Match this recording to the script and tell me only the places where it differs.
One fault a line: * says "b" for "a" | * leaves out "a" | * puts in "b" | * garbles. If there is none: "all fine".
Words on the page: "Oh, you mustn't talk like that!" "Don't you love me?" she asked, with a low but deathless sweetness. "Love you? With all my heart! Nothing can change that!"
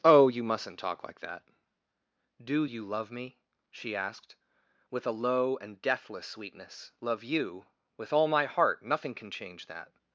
* says "Do" for "Don't"
* says "and" for "but"